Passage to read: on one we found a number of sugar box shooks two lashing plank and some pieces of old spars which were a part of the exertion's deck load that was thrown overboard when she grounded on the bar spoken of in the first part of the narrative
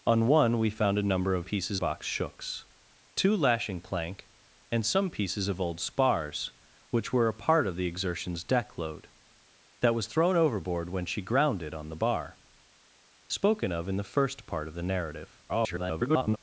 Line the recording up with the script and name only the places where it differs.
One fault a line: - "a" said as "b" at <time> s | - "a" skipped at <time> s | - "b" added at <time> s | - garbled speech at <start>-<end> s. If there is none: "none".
- "sugar" said as "pieces" at 1.4 s
- garbled speech at 15.5-16.4 s